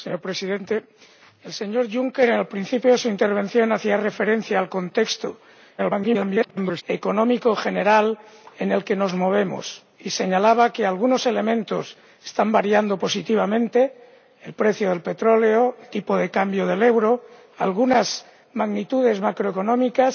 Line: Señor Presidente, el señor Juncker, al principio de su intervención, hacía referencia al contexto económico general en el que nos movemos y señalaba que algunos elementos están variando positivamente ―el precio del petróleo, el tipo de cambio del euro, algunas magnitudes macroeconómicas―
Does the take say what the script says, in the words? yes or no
no